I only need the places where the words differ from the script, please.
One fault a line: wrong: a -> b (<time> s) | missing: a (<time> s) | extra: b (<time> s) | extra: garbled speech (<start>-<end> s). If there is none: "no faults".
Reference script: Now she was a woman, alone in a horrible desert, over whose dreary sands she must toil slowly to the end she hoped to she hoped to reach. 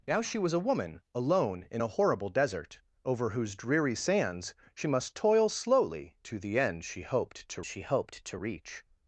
no faults